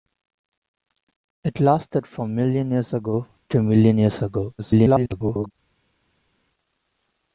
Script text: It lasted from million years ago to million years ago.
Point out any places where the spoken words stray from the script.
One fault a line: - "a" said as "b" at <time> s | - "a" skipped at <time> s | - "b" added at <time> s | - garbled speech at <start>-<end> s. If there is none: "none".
- garbled speech at 4.6-5.5 s